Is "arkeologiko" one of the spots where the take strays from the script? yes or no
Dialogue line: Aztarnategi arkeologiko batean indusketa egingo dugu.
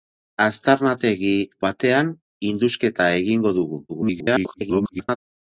yes